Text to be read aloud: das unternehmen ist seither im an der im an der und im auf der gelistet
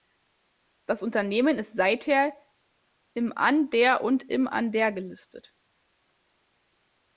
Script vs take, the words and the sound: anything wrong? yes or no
yes